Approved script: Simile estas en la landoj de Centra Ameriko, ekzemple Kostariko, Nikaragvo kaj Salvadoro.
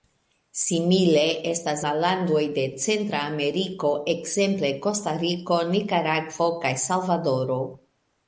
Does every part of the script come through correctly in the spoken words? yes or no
no